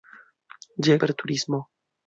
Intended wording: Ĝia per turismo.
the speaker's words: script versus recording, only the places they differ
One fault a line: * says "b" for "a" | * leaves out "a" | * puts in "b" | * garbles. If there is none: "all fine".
all fine